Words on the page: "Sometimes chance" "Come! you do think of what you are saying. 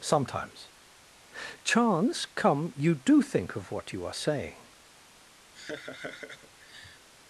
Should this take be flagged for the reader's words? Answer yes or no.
no